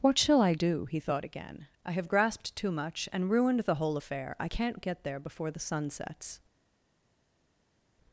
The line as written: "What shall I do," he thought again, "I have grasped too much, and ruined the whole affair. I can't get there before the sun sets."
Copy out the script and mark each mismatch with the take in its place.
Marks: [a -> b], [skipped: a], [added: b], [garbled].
"What shall I do," he thought again, "I have grasped too much, and ruined the whole affair. I can't get there before the sun sets."